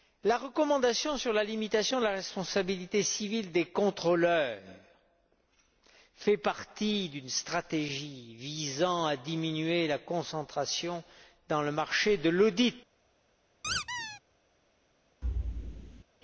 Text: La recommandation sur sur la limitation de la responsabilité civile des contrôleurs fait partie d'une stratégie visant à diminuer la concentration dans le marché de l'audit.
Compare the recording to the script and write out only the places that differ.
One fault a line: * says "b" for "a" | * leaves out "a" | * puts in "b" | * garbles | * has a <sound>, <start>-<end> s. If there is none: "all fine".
* leaves out "sur"
* has a squeak, 13.6-14.2 s
* has a thud, 15.2-16.0 s